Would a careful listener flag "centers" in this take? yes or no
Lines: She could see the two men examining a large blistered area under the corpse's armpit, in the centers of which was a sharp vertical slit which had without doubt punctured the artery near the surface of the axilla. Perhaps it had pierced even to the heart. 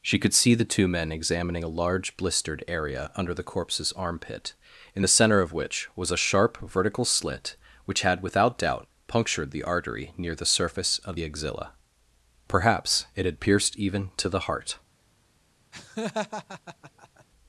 yes